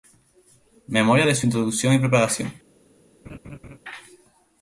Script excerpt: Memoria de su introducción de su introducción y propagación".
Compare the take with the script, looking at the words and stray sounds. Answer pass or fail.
fail